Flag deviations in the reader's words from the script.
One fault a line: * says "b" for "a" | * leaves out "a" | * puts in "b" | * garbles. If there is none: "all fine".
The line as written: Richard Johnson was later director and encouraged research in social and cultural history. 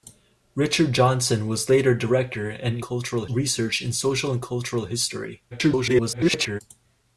* says "cultural" for "encouraged"
* garbles